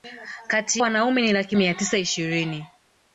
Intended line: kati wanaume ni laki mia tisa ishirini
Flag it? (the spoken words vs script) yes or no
no